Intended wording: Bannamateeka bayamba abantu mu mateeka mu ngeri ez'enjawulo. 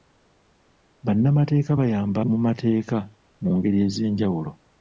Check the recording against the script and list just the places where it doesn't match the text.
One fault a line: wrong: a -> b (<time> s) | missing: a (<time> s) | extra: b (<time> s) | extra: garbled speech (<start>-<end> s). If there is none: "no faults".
missing: abantu (2.2 s)